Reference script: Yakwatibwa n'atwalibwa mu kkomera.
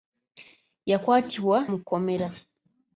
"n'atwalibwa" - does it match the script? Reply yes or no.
no